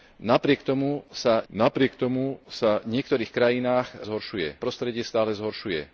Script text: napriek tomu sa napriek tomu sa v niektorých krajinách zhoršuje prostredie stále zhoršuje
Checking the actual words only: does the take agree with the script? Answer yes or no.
yes